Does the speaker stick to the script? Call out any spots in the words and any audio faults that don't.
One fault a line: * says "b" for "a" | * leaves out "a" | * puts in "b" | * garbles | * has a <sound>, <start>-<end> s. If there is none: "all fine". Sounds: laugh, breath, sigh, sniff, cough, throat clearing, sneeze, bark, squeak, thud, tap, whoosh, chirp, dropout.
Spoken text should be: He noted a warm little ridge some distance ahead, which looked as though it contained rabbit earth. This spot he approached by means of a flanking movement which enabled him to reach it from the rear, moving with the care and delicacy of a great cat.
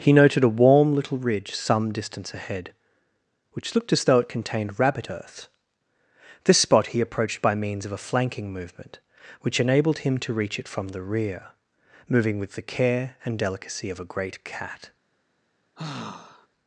* has a sigh, 15.8-16.5 s